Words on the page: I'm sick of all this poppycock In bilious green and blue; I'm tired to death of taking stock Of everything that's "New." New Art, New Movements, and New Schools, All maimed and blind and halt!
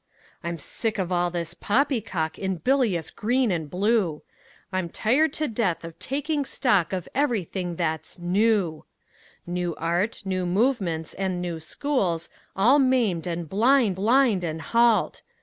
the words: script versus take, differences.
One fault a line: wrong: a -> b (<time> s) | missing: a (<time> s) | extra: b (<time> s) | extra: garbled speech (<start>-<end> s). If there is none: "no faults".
extra: blind (13.9 s)